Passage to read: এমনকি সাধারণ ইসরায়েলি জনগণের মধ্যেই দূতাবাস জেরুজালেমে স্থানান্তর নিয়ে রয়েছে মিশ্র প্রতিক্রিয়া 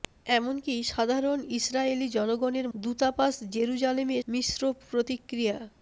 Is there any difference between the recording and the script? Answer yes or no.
yes